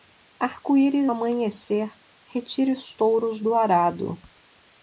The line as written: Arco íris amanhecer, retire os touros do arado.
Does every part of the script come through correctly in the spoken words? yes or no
yes